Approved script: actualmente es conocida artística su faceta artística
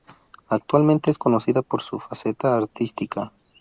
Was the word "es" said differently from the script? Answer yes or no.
no